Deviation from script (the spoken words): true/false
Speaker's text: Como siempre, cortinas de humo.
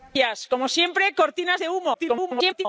true